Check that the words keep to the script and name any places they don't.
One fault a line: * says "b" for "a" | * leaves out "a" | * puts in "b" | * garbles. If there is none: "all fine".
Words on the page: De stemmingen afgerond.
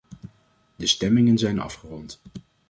* puts in "zijn"